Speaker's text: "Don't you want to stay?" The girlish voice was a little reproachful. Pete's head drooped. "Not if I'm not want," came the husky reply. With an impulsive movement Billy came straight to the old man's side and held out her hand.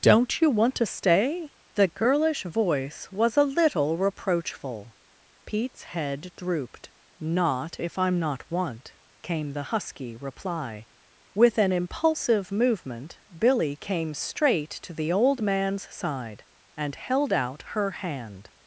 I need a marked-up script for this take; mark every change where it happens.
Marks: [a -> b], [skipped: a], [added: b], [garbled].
"Don't you want to stay?" The girlish voice was a little reproachful. Pete's head drooped. "Not if I'm not want," came the husky reply. With an impulsive movement Billy came straight to the old man's side and held out her hand.